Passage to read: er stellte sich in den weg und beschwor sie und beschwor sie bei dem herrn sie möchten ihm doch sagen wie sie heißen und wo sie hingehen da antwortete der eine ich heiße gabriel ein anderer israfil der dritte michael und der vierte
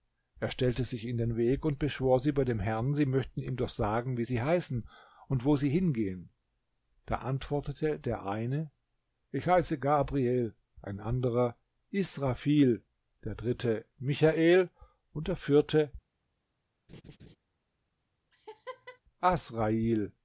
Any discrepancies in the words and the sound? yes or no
yes